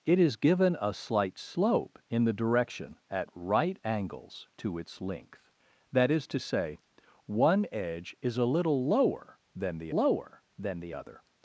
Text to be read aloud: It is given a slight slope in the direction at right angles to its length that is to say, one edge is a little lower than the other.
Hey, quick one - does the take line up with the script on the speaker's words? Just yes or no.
no